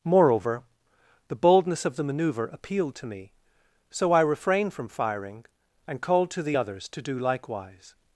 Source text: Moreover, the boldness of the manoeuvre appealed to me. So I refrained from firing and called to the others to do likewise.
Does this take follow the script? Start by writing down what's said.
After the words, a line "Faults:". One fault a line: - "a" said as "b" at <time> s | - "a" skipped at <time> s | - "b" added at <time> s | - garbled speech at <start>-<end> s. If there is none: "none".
Moreover, the boldness of the manoeuvre appealed to me. So I refrained from firing and called to the others to do likewise.
Faults:
none